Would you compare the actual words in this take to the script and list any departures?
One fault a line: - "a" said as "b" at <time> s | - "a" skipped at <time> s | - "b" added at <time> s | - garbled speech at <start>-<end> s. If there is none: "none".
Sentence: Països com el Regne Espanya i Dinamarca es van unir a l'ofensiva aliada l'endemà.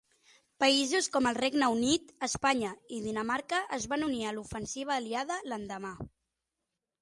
- "Unit" added at 1.7 s